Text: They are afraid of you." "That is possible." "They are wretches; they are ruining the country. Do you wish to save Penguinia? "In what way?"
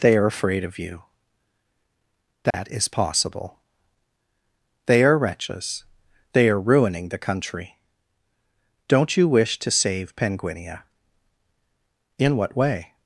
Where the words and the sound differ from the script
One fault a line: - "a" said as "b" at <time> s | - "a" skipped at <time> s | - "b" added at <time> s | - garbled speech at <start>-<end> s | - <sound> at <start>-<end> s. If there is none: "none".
- dropout at 2.5-2.5 s
- "Do" said as "Don't" at 8.9 s